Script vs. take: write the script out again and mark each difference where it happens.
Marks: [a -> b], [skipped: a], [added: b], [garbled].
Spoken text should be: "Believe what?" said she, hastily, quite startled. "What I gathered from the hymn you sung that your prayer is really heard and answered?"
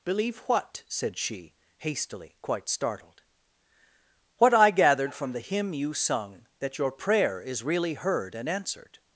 "Believe what?" said she, hastily, quite startled. "What I gathered from the hymn you sung that your prayer is really heard and answered?"